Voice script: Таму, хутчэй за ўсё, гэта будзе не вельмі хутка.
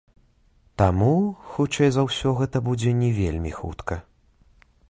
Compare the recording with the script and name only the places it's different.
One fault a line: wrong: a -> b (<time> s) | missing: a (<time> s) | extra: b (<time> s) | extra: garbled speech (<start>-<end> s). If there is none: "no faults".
no faults